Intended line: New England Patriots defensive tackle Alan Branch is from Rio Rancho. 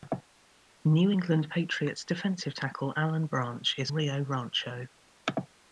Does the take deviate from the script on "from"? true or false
true